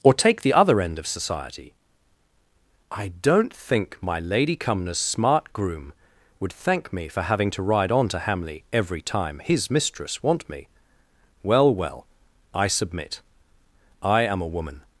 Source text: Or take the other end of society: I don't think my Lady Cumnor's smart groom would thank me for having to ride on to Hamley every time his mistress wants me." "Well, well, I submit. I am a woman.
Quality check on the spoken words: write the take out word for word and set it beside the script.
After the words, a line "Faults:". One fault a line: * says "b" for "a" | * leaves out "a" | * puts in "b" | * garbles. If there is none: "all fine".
Or take the other end of society: I don't think my Lady Cumnor's smart groom would thank me for having to ride on to Hamley every time his mistress want me." "Well, well, I submit. I am a woman.
Faults:
* says "want" for "wants"